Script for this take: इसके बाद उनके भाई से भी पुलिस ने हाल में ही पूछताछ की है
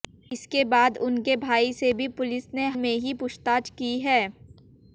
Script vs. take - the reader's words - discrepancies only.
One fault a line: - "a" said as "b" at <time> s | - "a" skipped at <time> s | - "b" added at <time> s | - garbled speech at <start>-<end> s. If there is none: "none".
- "हाल" skipped at 2.7 s